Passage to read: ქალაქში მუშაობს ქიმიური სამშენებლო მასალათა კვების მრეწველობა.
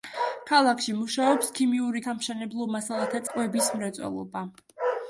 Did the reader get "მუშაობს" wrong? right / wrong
right